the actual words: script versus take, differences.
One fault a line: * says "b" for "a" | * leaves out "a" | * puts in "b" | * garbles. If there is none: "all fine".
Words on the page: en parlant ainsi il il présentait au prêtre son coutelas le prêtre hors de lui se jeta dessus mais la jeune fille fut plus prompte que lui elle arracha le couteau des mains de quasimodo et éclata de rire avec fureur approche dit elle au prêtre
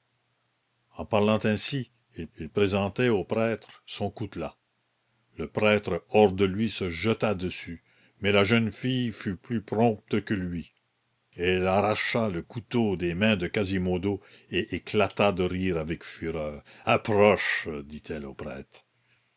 all fine